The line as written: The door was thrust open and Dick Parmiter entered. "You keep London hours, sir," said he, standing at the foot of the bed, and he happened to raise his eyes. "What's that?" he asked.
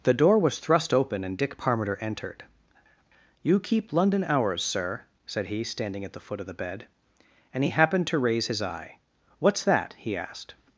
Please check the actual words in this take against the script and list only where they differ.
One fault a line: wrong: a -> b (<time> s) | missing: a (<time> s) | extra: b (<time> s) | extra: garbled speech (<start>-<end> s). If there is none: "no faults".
wrong: eyes -> eye (8.6 s)